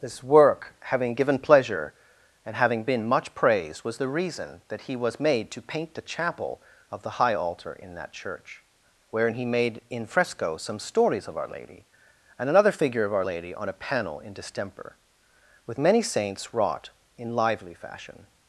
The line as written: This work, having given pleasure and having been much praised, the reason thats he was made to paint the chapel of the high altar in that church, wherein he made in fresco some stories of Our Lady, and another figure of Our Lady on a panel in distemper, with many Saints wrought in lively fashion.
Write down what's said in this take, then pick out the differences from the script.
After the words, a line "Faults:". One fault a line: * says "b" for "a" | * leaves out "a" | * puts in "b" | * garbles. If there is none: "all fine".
This work, having given pleasure and having been much praised, was the reason that he was made to paint the chapel of the high altar in that church, wherein he made in fresco some stories of Our Lady, and another figure of Our Lady on a panel in distemper, with many Saints wrought in lively fashion.
Faults:
* puts in "was"
* says "that" for "thats"